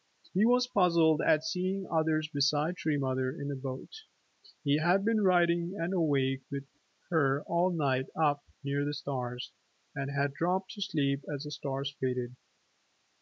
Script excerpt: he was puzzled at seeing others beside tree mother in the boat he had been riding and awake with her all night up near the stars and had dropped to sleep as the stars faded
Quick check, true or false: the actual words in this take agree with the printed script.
true